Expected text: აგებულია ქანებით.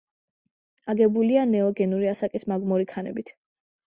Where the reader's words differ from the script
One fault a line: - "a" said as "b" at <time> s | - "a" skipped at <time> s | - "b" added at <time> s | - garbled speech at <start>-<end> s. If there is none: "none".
- "ნეოგენური ასაკის მაგმური" added at 1.5 s